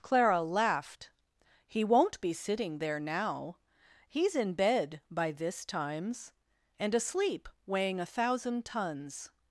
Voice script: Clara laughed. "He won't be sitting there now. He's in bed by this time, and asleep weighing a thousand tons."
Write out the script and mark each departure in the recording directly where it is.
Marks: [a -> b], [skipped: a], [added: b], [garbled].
Clara laughed. "He won't be sitting there now. He's in bed by this [time, -> times] and asleep weighing a thousand tons."